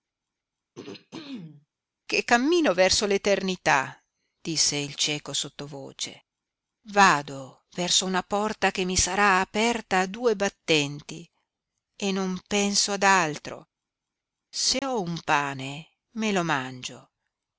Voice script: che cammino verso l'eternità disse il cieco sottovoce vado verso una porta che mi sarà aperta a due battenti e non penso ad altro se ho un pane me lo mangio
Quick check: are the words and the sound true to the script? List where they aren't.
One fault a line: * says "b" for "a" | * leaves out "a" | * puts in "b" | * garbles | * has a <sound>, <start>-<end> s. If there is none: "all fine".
* has a throat clearing, 0.7-1.7 s
* has a dropout, 14.8-14.8 s